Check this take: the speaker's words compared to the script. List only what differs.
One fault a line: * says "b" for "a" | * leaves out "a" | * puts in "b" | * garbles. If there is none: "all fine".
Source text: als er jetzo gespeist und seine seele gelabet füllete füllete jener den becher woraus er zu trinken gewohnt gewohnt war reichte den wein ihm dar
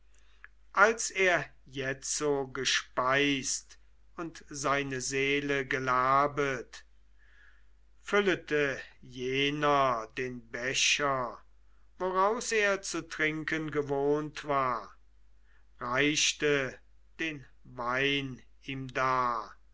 * leaves out "füllete"
* leaves out "gewohnt"